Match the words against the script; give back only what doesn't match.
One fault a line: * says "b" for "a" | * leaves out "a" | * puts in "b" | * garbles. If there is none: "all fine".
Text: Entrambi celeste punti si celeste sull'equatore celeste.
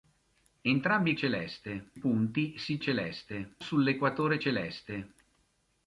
all fine